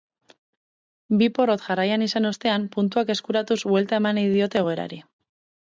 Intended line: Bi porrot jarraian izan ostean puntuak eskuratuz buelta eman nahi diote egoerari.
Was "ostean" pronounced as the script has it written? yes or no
yes